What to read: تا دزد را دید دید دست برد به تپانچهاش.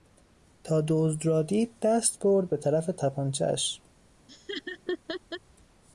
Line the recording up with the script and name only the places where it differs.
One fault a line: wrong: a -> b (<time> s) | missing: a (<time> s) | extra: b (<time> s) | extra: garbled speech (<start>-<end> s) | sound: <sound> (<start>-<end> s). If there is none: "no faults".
missing: دید (1.7 s)
extra: طرف (2.6 s)
sound: laugh (4.3-5.4 s)